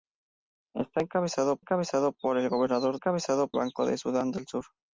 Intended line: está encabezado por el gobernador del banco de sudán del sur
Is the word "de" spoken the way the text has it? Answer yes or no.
yes